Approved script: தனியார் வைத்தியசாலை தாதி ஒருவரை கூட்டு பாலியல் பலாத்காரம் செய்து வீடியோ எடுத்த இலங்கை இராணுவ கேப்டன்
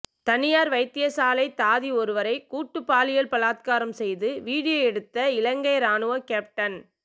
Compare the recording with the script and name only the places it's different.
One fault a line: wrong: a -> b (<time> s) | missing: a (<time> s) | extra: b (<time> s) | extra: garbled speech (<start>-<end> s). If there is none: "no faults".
no faults